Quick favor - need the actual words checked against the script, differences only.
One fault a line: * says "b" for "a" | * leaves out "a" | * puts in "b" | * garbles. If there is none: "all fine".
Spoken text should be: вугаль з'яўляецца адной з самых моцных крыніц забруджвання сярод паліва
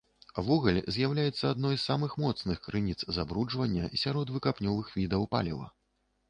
* puts in "выкапнёвых відаў"